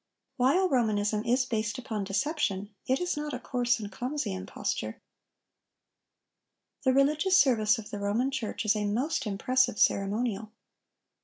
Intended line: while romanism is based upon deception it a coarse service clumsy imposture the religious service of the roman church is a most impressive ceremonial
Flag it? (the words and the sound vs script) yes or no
yes